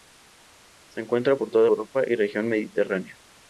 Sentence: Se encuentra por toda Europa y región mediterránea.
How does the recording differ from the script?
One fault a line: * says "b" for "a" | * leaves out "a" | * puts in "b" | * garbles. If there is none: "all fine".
all fine